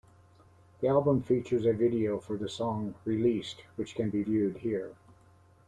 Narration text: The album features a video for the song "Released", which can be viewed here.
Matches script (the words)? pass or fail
pass